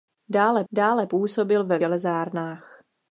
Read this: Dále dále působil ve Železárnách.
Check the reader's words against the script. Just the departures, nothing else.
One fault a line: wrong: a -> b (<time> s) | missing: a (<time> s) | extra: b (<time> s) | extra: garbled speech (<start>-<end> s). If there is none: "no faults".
no faults